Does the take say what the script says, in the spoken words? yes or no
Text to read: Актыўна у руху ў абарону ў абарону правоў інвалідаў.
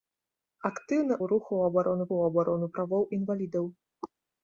yes